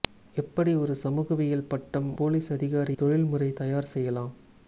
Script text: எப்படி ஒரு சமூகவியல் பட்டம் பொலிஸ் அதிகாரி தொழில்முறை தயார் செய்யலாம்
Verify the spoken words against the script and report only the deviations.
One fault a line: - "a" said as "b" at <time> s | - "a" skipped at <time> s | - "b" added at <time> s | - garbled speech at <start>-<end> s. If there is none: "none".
none